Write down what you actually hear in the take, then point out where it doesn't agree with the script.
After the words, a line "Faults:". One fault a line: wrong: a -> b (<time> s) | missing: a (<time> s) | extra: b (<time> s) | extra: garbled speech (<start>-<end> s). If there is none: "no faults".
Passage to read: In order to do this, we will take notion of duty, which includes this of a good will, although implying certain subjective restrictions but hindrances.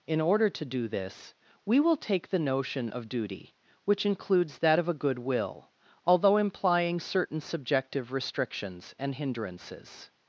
In order to do this, we will take the notion of duty, which includes that of a good will, although implying certain subjective restrictions and hindrances.
Faults:
extra: the (2.3 s)
wrong: this -> that (4.6 s)
wrong: but -> and (9.0 s)